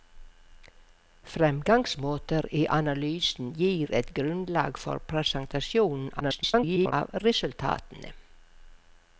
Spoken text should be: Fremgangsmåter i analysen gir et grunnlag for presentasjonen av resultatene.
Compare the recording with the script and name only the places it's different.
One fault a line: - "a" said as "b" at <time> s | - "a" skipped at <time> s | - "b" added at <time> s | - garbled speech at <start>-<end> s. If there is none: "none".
- garbled speech at 6.2-6.9 s